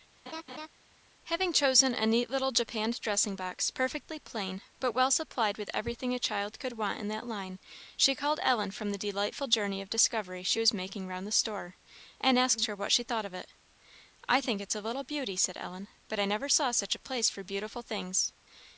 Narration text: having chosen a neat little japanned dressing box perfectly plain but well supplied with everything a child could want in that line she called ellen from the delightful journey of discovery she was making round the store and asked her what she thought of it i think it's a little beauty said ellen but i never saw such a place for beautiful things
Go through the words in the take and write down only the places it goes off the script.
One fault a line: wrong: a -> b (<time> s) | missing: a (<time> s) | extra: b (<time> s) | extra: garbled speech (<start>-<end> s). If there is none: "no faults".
no faults